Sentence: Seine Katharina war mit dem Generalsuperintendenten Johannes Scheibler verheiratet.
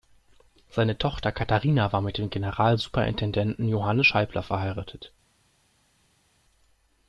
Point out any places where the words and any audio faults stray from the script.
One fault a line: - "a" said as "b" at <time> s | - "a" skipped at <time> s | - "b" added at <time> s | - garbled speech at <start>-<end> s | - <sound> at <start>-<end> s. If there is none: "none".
- "Tochter" added at 1.0 s